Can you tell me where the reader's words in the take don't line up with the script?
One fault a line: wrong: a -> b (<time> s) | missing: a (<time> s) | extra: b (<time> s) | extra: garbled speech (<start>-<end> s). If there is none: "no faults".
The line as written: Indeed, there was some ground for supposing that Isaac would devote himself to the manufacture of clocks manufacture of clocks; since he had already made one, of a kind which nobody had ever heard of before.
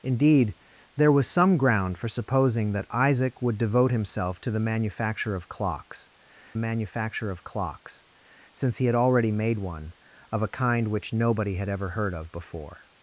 no faults